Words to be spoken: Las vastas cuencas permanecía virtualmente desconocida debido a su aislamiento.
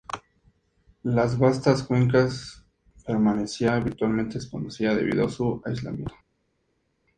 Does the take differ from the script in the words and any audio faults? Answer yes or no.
no